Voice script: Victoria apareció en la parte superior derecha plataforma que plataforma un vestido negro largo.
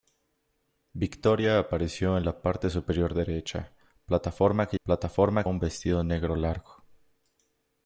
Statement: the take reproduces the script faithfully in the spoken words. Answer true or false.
true